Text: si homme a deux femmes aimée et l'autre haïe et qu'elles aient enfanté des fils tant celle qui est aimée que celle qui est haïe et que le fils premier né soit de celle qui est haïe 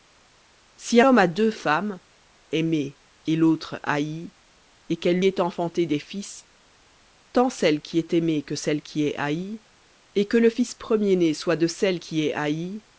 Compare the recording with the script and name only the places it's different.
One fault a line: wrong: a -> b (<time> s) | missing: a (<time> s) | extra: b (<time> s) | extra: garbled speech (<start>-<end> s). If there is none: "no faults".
no faults